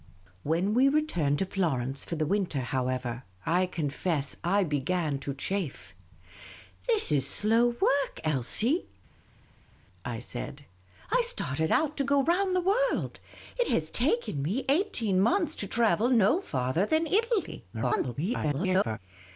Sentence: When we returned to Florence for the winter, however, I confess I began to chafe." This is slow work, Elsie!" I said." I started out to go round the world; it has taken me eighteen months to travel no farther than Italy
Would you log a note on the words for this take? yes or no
yes